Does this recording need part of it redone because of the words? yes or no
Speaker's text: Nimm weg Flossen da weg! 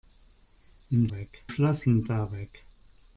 no